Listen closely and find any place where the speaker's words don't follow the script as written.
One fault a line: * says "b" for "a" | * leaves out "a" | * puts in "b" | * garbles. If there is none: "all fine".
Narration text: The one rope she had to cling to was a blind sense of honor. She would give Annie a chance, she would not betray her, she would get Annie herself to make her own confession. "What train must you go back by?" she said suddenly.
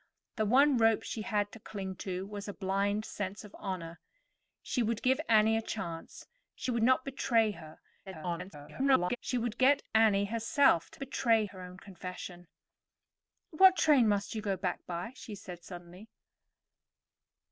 * garbles
* says "betray" for "make"